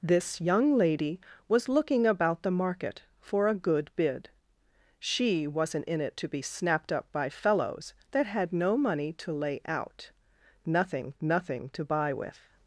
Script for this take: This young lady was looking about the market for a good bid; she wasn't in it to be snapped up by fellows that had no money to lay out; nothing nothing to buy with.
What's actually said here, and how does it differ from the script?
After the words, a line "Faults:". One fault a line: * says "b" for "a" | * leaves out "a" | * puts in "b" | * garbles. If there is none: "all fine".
This young lady was looking about the market for a good bid; she wasn't in it to be snapped up by fellows that had no money to lay out; nothing nothing to buy with.
Faults:
all fine